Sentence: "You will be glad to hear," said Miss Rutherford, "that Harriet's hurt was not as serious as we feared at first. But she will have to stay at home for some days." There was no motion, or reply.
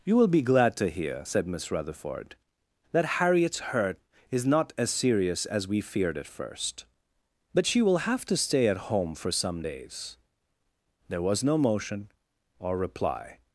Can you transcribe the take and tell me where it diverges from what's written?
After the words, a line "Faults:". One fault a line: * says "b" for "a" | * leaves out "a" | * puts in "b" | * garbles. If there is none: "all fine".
"You will be glad to hear," said Miss Rutherford, "that Harriet's hurt is not as serious as we feared at first. But she will have to stay at home for some days." There was no motion, or reply.
Faults:
* says "is" for "was"